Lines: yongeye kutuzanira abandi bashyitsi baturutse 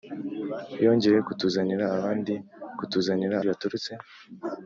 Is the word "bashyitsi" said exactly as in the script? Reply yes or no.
no